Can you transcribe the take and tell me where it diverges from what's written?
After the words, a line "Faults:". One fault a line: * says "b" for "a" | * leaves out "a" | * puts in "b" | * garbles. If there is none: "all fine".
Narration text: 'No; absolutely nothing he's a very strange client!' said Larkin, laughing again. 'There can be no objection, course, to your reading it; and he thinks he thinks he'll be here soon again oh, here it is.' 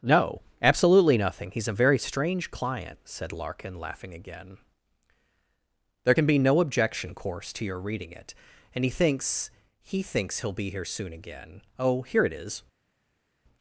'No; absolutely nothing he's a very strange client!' said Larkin, laughing again. 'There can be no objection, course, to your reading it; and he thinks he thinks he'll be here soon again oh, here it is.'
Faults:
all fine